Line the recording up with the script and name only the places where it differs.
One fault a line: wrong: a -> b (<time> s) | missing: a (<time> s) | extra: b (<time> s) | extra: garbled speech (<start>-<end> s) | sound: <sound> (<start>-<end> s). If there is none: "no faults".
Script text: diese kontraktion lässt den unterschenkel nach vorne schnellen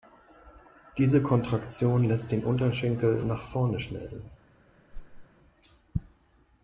sound: whoosh (4.9-5.3 s)